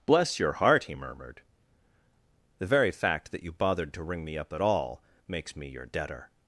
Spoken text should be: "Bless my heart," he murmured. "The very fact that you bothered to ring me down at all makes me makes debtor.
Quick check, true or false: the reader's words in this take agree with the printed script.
false